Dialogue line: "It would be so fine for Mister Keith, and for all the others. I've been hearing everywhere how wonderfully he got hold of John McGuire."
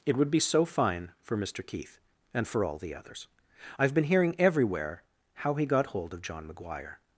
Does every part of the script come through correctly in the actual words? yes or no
no